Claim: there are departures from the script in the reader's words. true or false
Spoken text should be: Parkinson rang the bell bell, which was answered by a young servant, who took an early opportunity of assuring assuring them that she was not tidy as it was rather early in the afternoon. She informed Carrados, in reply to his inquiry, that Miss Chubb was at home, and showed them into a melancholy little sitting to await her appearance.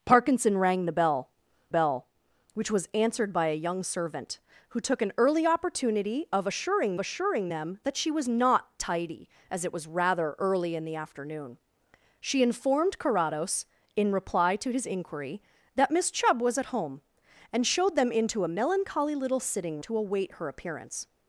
false